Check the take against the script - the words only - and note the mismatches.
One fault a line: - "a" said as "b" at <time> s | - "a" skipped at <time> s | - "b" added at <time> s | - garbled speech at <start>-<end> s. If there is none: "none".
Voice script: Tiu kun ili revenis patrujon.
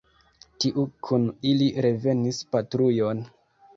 none